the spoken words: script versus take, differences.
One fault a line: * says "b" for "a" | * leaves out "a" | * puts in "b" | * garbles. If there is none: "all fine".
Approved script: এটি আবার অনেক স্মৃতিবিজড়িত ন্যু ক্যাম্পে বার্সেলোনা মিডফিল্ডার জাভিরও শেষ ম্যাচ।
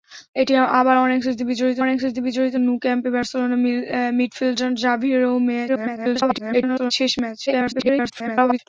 * puts in "অনেক স্মৃতিবিজড়িত"
* garbles
* garbles